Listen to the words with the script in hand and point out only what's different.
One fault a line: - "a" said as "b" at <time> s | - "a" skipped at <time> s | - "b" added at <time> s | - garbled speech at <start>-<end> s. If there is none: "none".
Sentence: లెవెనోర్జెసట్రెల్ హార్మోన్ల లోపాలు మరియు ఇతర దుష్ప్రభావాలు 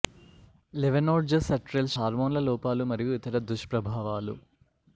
none